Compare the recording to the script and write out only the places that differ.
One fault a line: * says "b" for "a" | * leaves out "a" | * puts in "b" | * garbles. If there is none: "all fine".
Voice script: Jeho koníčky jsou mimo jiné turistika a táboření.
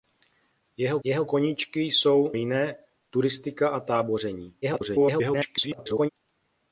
* puts in "jeho"
* leaves out "mimo"
* garbles